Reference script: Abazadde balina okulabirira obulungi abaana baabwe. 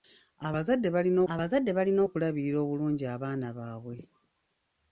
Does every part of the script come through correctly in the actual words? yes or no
no